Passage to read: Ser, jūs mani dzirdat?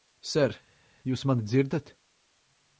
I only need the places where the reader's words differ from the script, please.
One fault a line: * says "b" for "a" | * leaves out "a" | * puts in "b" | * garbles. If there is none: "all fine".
all fine